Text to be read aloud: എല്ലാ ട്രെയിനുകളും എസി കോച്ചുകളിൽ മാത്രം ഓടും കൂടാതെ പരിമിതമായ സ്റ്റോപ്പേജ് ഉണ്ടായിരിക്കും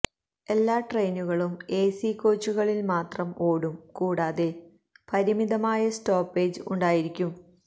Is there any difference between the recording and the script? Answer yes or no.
no